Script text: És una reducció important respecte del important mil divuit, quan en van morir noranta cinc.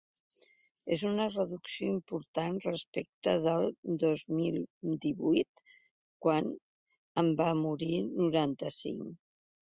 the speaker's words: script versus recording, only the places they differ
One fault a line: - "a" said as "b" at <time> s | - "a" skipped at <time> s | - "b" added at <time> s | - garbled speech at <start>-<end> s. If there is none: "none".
- "important" said as "dos" at 4.0 s